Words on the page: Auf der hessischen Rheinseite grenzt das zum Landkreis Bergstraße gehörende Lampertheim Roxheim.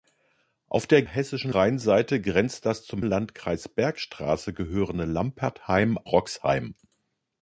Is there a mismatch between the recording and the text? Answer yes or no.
no